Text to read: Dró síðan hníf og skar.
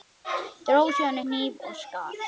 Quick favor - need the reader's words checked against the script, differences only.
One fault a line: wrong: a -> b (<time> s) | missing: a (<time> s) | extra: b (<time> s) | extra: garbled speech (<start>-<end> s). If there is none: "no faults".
no faults